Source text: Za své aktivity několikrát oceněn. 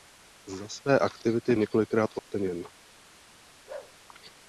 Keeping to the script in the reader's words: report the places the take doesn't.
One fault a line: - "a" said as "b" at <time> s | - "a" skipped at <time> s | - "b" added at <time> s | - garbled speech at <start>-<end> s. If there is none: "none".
none